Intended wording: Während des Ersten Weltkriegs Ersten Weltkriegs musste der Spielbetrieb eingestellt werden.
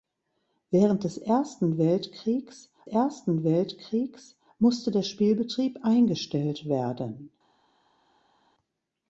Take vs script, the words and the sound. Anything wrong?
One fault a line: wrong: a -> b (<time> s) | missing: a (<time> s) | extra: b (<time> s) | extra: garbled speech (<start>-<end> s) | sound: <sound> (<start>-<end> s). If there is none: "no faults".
no faults